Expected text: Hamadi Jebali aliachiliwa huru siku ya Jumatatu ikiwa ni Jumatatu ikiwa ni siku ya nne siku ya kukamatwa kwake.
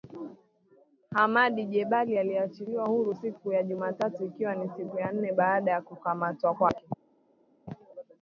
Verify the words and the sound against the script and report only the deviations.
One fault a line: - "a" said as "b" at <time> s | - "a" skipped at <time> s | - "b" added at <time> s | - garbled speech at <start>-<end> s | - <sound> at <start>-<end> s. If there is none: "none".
- "Jumatatu ikiwa ni" skipped at 4.7 s
- "siku" said as "baada" at 5.3 s